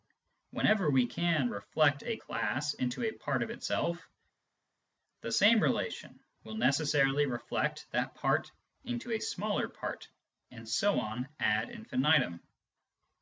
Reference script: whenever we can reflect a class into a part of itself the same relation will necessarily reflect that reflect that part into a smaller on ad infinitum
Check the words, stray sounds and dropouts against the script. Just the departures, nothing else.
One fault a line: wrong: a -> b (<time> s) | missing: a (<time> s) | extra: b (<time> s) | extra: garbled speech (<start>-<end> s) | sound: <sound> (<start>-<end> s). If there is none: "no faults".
missing: reflect that (8.2 s)
extra: part and so (9.7 s)